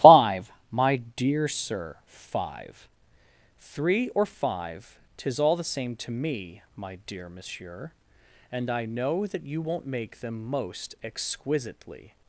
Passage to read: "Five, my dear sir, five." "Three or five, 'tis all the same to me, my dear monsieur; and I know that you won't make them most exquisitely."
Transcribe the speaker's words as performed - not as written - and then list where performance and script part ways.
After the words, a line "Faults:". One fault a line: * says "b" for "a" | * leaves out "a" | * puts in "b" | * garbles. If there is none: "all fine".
"Five, my dear sir, five." "Three or five, 'tis all the same to me, my dear monsieur; and I know that you won't make them most exquisitely."
Faults:
all fine